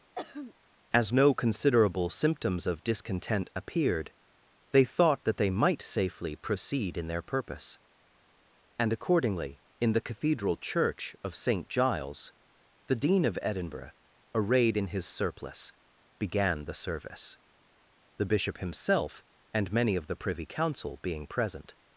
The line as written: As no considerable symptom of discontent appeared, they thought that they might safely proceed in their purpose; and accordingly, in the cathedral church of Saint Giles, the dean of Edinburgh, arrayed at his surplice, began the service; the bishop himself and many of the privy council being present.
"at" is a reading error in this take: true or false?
true